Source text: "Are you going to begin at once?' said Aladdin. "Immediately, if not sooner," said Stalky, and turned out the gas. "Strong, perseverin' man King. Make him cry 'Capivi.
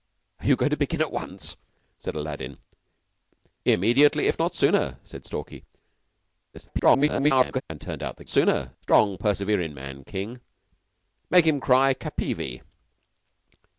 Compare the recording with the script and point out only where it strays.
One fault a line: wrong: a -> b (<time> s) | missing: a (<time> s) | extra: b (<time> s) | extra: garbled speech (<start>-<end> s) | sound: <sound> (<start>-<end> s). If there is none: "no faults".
extra: garbled speech (6.5-7.6 s)
wrong: gas -> sooner (8.3 s)